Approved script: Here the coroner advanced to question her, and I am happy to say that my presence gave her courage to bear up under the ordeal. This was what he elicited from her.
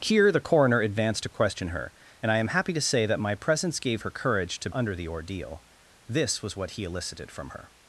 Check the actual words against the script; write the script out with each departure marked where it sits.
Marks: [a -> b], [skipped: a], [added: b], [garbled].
Here the coroner advanced to question her, and I am happy to say that my presence gave her courage to [skipped: bear up] under the ordeal. This was what he elicited from her.